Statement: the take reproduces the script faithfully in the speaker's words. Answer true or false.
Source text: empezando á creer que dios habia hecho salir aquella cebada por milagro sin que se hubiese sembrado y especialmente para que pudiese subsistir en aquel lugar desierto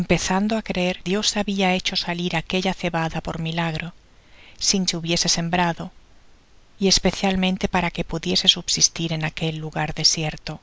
false